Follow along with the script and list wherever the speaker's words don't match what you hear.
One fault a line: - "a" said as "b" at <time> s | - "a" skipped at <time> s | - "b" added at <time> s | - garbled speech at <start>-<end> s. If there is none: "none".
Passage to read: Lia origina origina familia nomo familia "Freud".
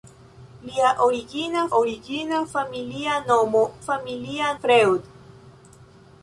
none